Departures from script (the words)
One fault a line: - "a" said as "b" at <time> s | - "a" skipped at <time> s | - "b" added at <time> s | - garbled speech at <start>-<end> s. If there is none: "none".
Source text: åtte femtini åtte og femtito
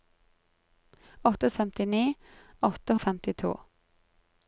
none